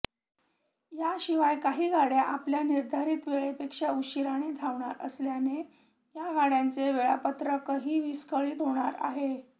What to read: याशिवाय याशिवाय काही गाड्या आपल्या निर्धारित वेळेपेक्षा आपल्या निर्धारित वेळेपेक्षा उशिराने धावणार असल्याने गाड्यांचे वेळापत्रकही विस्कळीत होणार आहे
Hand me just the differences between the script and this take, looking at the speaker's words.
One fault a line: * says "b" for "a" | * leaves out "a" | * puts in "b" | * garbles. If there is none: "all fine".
* leaves out "याशिवाय"
* leaves out "आपल्या निर्धारित वेळेपेक्षा"
* puts in "या"